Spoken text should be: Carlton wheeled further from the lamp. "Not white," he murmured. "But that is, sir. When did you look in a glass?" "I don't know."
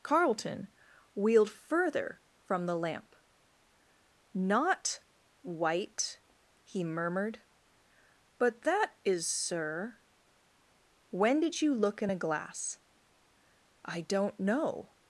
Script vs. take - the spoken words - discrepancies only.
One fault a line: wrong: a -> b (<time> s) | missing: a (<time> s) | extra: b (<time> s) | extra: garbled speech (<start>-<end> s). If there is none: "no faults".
no faults